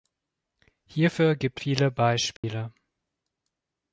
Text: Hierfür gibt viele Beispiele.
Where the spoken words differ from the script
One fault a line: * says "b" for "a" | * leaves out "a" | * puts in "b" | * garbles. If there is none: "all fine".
all fine